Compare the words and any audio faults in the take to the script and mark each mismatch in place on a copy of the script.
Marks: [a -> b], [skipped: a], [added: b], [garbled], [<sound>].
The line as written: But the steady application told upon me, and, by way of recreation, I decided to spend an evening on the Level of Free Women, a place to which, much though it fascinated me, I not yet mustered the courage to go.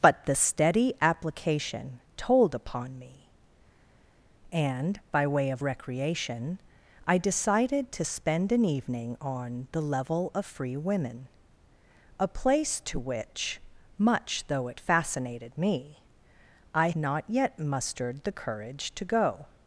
But the steady application told upon me, and, by way of recreation, I decided to spend an evening on the Level of Free Women, a place to which, much though it fascinated me, I not yet mustered the courage to go.